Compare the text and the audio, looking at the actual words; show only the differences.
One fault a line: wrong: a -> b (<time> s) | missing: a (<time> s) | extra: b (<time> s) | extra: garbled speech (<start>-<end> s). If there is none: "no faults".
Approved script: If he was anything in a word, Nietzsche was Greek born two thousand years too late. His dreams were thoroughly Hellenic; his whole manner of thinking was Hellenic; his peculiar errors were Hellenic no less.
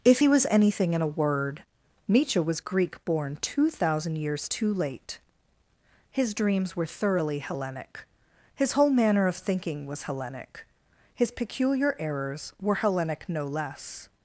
no faults